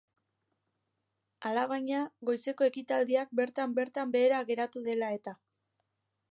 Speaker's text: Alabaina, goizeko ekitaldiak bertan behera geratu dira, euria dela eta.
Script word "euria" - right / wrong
wrong